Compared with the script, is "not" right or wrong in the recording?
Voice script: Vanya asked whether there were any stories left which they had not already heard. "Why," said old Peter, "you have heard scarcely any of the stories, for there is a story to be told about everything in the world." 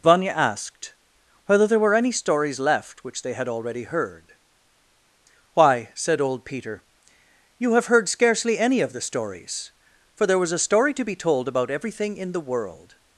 wrong